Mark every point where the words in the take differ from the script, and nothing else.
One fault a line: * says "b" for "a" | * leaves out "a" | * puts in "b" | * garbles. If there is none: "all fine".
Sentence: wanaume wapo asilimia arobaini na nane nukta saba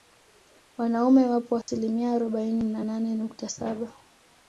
all fine